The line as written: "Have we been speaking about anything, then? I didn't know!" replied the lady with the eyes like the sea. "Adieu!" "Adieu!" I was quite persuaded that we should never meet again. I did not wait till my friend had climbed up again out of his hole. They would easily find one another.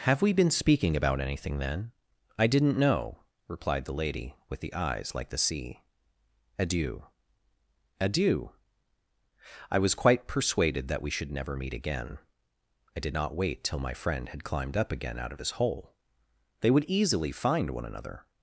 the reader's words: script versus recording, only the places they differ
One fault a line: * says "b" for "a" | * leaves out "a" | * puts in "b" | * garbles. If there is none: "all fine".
all fine